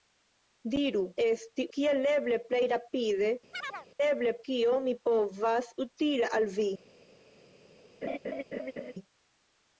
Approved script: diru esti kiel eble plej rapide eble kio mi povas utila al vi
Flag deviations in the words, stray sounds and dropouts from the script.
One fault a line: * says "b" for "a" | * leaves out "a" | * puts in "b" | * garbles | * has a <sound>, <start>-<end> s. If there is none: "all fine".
* has a chirp, 3.5-3.9 s
* has a laugh, 8.0-8.9 s